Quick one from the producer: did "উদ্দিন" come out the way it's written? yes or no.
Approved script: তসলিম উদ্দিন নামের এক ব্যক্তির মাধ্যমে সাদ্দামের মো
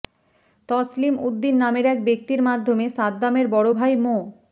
yes